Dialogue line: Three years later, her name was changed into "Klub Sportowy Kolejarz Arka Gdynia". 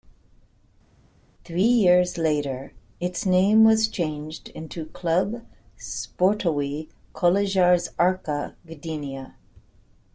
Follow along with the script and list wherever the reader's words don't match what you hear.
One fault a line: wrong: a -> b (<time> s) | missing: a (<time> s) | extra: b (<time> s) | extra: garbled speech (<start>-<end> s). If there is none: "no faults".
wrong: her -> its (3.0 s)